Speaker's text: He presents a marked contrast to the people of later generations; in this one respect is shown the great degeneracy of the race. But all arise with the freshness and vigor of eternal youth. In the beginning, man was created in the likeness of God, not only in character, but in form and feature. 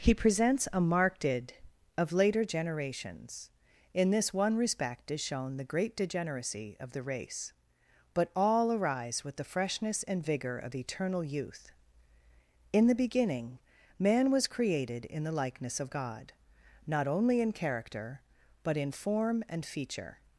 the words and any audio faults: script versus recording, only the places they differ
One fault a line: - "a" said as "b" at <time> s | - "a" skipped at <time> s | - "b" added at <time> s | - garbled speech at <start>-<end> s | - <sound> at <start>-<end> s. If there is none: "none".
- "contrast to the people" skipped at 1.3 s